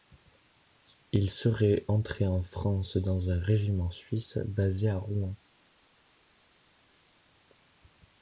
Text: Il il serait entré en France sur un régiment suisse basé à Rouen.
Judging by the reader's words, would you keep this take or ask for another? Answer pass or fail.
fail